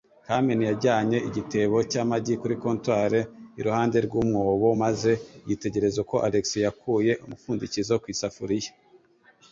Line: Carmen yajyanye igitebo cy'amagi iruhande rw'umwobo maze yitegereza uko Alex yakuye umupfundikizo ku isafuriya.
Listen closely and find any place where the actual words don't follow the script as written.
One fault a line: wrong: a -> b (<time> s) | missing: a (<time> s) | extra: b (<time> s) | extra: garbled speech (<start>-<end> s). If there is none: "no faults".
extra: kuri comptoir (2.4 s)